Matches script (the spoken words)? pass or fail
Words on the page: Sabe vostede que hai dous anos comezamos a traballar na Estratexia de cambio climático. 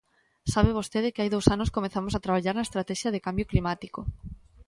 pass